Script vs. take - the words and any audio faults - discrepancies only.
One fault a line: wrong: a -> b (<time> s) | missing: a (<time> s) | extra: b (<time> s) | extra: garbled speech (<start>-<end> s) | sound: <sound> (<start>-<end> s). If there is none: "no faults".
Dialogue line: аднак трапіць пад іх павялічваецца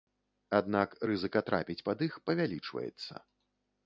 extra: рызыка (1.1 s)